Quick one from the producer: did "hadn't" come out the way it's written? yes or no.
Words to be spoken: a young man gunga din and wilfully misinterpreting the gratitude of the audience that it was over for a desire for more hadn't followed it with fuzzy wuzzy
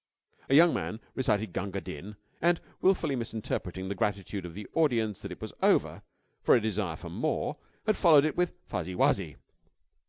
no